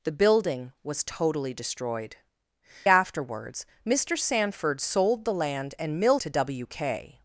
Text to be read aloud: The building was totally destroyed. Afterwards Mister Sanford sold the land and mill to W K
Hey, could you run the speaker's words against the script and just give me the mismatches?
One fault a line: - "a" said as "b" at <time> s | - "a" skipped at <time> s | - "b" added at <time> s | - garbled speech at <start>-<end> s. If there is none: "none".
none